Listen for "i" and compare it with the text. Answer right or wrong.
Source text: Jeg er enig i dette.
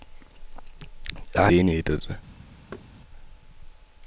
right